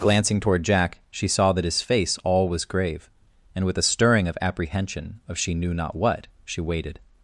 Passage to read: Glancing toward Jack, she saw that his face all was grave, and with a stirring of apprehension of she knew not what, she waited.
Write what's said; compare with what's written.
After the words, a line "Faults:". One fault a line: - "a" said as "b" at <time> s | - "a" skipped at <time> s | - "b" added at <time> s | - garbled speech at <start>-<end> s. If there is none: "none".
Glancing toward Jack, she saw that his face all was grave, and with a stirring of apprehension of she knew not what, she waited.
Faults:
none